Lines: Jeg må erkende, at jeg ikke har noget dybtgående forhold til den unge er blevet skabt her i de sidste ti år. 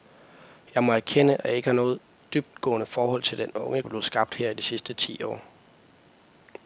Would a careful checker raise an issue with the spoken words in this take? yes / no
no